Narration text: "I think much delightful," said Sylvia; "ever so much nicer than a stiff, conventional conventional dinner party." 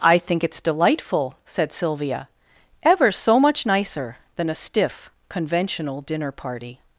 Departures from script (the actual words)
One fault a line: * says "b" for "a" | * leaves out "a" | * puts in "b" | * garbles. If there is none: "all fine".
* says "it's" for "much"
* leaves out "conventional"